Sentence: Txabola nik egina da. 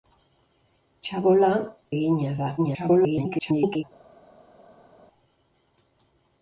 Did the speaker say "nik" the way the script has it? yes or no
no